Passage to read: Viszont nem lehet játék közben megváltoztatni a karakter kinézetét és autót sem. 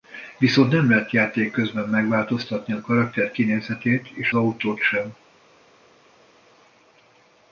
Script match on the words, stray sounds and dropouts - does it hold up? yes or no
yes